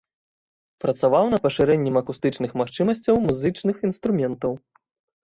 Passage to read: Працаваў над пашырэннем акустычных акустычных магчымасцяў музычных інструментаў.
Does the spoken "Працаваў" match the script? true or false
true